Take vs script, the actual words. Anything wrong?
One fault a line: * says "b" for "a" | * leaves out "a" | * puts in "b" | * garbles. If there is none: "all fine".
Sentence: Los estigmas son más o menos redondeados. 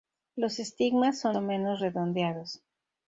* leaves out "más"